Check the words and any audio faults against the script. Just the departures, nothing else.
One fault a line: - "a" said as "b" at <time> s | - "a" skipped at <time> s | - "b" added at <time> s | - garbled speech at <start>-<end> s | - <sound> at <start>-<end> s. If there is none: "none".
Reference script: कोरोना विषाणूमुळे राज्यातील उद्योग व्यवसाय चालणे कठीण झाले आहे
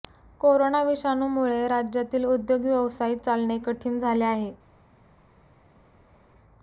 none